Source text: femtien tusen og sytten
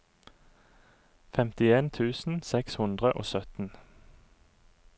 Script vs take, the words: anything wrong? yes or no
yes